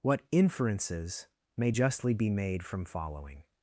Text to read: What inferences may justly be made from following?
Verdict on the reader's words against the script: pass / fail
pass